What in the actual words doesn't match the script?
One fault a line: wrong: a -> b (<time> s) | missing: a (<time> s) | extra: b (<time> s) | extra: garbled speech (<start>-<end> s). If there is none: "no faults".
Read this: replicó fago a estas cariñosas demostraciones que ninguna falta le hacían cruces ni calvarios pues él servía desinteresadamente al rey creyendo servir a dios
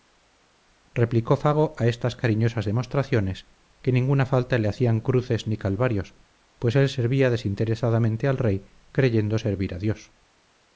no faults